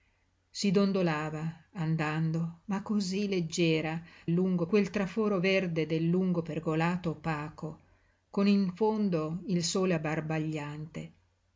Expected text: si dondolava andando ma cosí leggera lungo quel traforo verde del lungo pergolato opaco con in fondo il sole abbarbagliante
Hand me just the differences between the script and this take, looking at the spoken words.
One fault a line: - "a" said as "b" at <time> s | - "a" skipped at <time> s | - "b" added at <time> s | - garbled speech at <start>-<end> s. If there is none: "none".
none